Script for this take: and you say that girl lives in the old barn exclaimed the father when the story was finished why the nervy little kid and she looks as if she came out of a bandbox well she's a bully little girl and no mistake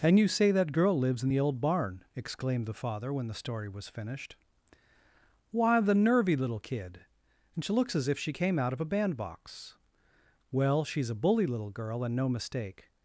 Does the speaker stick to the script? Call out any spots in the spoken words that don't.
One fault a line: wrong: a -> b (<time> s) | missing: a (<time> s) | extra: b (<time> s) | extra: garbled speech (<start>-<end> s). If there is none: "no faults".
no faults